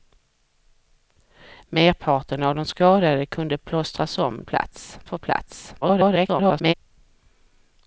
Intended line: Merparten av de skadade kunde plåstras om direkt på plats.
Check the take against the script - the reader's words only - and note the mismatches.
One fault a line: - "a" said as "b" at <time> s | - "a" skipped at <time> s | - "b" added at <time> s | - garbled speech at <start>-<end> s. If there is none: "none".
- "direkt" said as "plats" at 4.4 s
- garbled speech at 5.8-6.7 s